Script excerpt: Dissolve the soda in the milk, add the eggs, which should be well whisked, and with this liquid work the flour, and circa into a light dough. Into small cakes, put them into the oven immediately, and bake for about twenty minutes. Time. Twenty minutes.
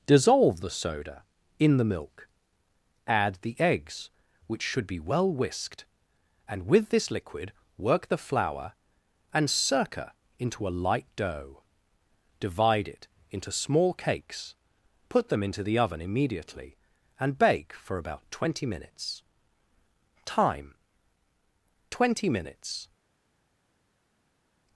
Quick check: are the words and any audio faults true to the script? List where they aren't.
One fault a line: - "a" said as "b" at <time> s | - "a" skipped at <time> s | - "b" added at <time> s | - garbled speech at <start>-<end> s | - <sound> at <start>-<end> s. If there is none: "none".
- "Divide it" added at 12.4 s